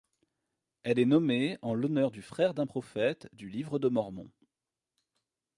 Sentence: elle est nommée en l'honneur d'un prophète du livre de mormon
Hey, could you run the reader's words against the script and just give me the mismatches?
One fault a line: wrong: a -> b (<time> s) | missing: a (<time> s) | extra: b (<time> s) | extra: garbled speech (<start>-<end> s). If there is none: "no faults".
extra: du frère (2.1 s)